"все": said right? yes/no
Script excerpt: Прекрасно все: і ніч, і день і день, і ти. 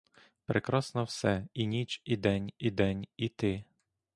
yes